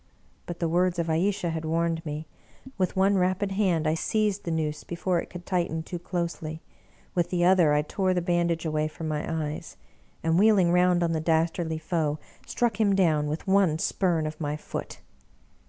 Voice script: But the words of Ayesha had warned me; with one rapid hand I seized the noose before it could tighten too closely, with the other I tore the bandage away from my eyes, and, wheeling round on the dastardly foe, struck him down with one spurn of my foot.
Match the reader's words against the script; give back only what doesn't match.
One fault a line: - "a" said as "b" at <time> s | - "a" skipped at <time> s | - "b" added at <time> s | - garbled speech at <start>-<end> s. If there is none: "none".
none